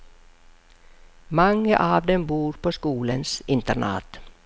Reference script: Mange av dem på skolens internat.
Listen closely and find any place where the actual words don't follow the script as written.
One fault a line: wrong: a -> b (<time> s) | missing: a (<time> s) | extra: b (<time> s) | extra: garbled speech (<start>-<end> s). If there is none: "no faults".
extra: bor (2.3 s)